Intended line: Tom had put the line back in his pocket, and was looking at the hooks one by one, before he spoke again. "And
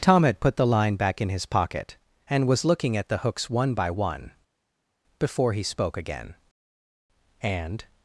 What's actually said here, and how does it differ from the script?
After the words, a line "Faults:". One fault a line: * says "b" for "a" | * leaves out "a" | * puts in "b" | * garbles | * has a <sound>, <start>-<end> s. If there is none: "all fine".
Tom had put the line back in his pocket, and was looking at the hooks one by one, before he spoke again. "And
Faults:
all fine